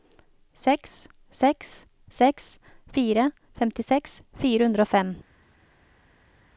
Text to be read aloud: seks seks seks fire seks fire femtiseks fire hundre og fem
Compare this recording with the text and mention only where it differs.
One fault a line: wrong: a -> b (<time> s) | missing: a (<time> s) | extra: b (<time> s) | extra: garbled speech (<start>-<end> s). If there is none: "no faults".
missing: seks fire (3.3 s)